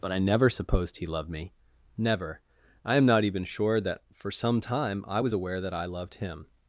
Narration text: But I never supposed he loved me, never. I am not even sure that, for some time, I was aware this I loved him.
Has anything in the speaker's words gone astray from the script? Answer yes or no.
yes